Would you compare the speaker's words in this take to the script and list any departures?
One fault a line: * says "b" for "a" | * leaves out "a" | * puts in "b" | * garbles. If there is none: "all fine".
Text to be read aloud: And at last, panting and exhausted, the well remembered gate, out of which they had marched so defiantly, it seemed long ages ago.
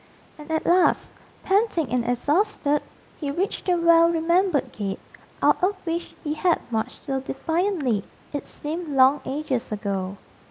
* puts in "he reached"
* says "he" for "they"